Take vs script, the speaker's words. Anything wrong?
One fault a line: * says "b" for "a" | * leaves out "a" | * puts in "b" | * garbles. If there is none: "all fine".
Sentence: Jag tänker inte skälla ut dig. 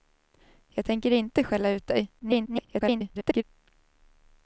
* garbles